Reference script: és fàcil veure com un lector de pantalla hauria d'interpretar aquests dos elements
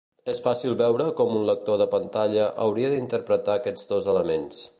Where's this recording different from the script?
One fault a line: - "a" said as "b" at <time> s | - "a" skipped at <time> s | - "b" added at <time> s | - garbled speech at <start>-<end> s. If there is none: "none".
none